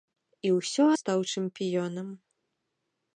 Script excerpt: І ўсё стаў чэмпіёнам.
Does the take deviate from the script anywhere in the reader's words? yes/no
no